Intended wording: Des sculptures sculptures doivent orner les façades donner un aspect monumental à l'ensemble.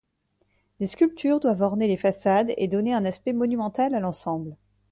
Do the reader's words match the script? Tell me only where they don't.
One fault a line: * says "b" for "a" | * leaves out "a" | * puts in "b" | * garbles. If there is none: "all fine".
* leaves out "sculptures"
* puts in "et"